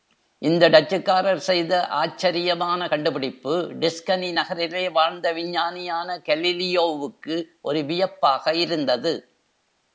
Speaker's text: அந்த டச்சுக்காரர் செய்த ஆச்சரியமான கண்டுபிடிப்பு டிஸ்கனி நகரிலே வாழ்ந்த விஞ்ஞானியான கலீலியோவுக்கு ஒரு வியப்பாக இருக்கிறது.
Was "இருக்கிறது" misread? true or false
true